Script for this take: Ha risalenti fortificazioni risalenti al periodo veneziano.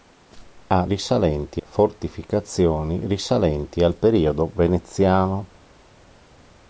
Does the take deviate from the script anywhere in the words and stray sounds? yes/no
no